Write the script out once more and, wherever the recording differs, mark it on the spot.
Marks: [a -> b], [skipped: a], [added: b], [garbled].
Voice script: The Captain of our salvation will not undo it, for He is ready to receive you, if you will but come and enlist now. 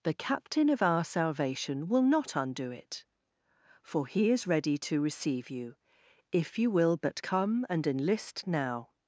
The Captain of our salvation will not undo it, for He is ready to receive you, if you will but come and enlist now.